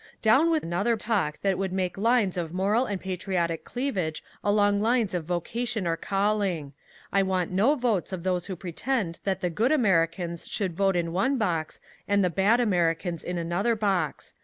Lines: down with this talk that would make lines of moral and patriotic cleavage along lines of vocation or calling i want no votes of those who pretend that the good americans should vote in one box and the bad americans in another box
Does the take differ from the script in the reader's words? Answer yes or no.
yes